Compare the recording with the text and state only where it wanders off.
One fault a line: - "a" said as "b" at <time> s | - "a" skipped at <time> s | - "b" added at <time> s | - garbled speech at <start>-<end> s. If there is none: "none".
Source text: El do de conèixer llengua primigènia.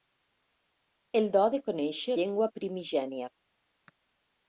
none